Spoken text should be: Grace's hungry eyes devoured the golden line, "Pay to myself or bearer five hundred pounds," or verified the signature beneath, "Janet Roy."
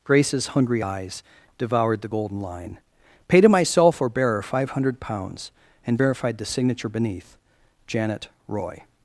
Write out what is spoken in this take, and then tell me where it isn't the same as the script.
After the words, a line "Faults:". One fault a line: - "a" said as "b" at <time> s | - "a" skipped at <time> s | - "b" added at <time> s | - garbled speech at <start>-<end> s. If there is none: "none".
Grace's hungry eyes devoured the golden line, "Pay to myself or bearer five hundred pounds," and verified the signature beneath, "Janet Roy."
Faults:
- "or" said as "and" at 5.9 s